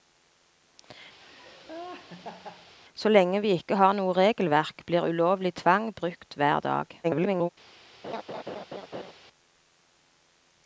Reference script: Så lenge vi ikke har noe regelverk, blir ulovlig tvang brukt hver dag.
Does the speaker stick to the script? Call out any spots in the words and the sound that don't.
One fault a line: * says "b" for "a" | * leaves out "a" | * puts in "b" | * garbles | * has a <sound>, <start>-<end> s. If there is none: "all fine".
* has a laugh, 1.2-2.7 s
* garbles
* has a laugh, 8.0-9.1 s